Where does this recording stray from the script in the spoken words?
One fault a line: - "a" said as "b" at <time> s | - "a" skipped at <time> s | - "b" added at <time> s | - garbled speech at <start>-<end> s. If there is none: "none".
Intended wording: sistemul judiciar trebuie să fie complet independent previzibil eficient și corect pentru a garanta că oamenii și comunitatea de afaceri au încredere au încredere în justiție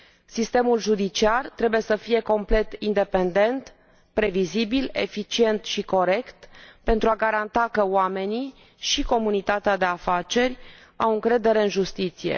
- "au încredere" skipped at 11.6 s